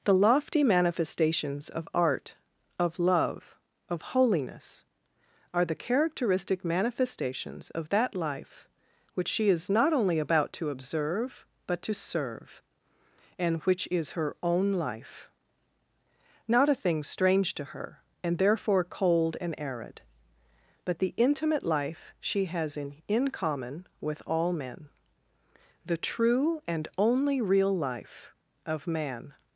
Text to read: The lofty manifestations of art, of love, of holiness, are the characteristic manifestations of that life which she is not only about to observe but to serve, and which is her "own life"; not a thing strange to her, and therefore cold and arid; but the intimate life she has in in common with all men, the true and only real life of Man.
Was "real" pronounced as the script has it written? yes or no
yes